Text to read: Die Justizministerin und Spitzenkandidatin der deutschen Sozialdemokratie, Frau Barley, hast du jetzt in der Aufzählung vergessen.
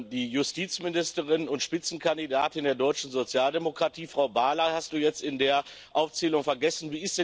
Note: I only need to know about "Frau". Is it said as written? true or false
true